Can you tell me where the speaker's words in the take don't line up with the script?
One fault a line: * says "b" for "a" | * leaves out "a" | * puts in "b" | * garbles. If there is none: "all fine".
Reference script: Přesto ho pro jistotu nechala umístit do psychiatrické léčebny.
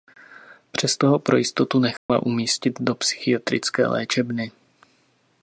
all fine